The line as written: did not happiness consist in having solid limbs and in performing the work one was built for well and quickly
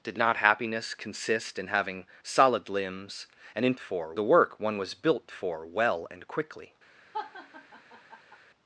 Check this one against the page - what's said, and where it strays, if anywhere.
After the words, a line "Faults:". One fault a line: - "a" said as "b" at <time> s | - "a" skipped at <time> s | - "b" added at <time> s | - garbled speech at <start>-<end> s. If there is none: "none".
did not happiness consist in having solid limbs and in for the work one was built for well and quickly
Faults:
- "performing" said as "for" at 3.8 s